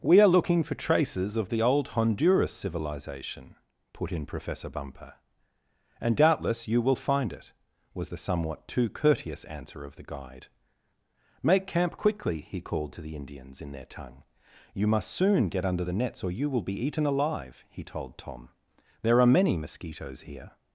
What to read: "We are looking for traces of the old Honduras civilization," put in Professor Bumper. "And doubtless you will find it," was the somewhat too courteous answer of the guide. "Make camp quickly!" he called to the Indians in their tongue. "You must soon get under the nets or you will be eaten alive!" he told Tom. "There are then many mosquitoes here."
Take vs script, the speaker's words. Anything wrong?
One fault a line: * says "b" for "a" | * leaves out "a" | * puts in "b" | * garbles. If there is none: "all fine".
* leaves out "then"